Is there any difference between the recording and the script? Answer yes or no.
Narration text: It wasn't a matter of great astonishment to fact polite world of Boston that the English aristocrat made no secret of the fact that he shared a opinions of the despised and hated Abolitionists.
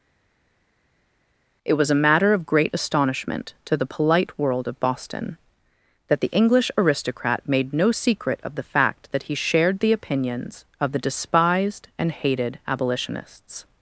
yes